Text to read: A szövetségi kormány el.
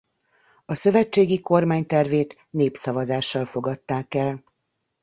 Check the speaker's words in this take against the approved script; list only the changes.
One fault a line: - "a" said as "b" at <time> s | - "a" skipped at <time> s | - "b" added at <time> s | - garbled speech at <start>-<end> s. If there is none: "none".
- "tervét népszavazással fogadták" added at 1.9 s